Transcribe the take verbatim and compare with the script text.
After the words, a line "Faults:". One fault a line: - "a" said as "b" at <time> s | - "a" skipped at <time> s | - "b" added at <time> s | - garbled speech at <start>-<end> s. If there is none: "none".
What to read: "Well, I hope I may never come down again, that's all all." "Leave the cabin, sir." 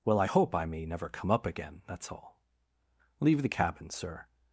"Well, I hope I may never come up again, that's all." "Leave the cabin, sir."
Faults:
- "down" said as "up" at 1.3 s
- "all" skipped at 2.4 s